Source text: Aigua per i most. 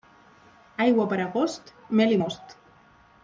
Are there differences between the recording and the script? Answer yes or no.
yes